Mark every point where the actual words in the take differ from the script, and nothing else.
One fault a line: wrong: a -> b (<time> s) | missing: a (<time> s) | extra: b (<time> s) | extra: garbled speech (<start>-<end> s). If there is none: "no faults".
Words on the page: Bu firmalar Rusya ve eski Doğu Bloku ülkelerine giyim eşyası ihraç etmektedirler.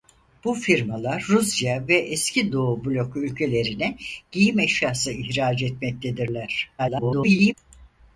extra: garbled speech (6.8-7.5 s)